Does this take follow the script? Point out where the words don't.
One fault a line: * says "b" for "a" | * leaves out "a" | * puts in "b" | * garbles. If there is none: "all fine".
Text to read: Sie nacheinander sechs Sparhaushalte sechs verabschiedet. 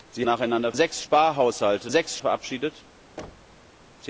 all fine